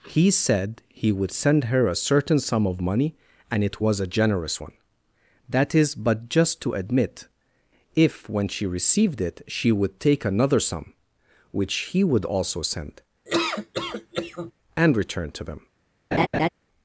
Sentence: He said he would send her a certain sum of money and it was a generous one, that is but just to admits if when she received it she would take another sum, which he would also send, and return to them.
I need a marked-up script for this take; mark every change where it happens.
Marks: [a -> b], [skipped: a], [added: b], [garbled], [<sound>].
He said he would send her a certain sum of money and it was a generous one, that is but just to [admits -> admit] if when she received it she would take another sum, which he would also send, [laugh] and return to them. [laugh]